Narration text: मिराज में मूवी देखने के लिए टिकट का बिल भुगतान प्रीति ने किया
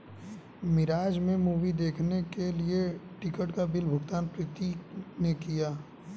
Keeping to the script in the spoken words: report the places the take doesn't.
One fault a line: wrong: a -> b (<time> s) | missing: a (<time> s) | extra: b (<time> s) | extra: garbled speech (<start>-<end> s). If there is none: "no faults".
no faults